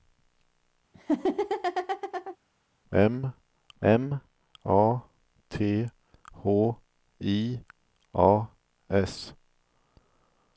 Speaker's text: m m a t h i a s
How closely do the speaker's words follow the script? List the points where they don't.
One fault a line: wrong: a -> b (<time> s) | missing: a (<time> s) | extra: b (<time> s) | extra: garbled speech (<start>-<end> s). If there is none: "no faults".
no faults